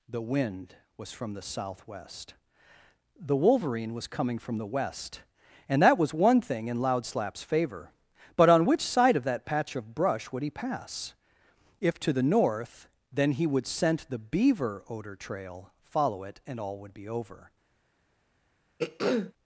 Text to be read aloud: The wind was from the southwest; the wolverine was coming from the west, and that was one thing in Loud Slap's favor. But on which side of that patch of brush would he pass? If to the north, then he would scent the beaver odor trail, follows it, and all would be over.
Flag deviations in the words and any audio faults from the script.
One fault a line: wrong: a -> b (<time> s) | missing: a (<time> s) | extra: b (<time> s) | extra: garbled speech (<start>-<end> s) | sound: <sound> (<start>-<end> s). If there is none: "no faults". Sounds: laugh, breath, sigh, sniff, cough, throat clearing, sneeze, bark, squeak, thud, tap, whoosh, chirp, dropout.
wrong: follows -> follow (15.8 s)
sound: throat clearing (18.8-19.3 s)